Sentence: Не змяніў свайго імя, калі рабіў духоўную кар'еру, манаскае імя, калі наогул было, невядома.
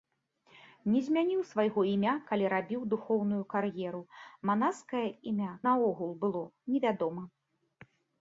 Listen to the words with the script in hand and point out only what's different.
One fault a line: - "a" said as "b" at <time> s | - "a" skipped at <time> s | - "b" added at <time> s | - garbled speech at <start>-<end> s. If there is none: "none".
- "калі" skipped at 5.5 s